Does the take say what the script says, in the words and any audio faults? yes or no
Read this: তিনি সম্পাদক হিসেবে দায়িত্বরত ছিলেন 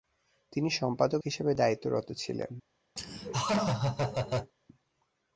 no